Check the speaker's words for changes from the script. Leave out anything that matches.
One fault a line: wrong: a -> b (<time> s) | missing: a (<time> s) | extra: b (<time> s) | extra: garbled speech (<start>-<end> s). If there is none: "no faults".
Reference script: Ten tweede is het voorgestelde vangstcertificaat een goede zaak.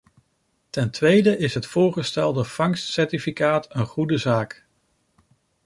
no faults